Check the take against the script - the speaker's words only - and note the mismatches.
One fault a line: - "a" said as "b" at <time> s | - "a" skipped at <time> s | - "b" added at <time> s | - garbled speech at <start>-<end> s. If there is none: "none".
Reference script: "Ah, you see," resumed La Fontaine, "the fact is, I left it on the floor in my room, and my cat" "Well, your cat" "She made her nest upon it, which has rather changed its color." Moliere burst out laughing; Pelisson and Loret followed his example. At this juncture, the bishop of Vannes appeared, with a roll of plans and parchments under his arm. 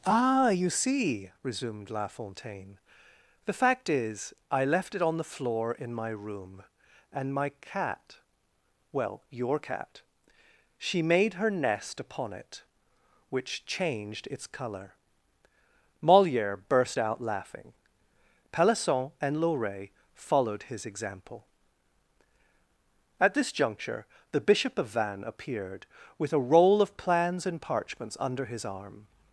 - "has rather" skipped at 13.6 s